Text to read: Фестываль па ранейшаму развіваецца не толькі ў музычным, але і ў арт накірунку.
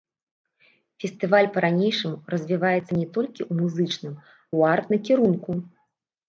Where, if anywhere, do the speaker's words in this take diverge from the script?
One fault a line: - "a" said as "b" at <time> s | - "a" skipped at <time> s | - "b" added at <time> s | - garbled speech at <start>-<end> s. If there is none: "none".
- "але і" skipped at 4.2 s